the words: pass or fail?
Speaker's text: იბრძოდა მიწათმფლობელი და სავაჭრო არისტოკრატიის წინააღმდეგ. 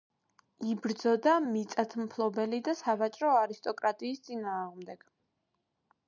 pass